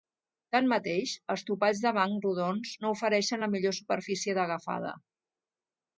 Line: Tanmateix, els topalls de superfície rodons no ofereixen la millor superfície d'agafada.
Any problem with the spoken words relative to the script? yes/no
yes